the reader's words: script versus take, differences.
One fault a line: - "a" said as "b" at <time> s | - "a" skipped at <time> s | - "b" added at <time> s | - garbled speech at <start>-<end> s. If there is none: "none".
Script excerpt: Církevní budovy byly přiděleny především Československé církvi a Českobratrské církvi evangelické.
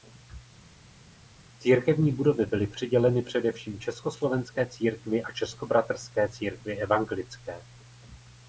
none